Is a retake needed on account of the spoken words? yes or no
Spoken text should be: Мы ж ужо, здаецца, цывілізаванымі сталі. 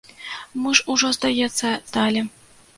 yes